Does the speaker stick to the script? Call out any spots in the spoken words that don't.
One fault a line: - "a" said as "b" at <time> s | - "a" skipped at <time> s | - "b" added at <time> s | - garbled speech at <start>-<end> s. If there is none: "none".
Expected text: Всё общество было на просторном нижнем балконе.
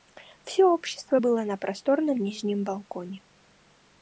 none